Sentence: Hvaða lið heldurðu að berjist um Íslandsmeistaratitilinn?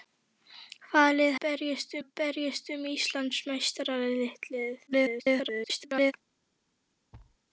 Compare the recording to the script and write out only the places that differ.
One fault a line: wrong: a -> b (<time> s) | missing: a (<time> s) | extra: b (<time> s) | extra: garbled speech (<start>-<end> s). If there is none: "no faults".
wrong: heldurðu -> berjist (1.5 s)
extra: garbled speech (4.9-6.1 s)